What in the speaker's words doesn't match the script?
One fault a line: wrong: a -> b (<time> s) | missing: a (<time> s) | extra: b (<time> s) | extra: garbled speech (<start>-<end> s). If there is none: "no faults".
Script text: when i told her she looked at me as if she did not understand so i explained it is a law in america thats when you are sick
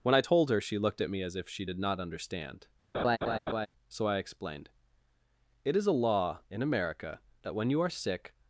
wrong: thats -> that (7.4 s)